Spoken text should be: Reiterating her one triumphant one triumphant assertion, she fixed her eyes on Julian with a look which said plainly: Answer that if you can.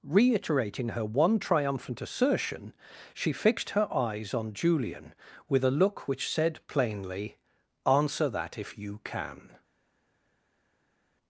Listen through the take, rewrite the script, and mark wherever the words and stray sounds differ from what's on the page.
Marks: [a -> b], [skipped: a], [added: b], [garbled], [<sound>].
Reiterating her one triumphant [skipped: one triumphant] assertion, she fixed her eyes on Julian with a look which said plainly: Answer that if you can.